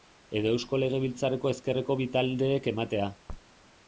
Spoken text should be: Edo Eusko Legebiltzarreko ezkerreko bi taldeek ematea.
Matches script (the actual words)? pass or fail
pass